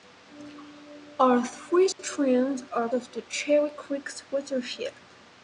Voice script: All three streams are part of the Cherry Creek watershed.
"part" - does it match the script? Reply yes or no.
no